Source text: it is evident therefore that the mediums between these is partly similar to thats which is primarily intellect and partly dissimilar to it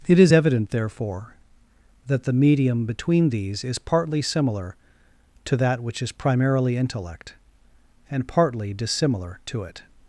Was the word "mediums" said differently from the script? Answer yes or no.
yes